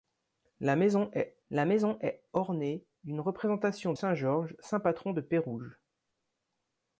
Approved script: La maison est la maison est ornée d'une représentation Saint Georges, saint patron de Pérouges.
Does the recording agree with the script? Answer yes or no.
yes